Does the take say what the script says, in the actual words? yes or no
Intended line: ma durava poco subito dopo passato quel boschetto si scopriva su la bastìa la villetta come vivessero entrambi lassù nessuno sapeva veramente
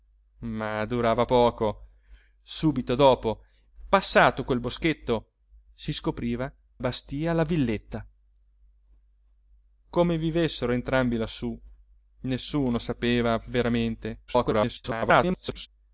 no